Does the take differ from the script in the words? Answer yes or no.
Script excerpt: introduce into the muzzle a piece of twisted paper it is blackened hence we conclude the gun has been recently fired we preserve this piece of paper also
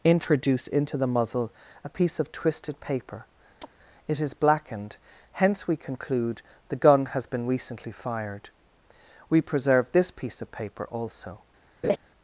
no